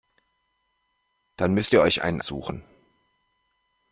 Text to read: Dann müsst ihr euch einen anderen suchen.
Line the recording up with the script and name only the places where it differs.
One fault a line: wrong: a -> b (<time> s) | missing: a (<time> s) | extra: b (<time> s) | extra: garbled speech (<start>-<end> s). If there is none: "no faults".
missing: anderen (2.2 s)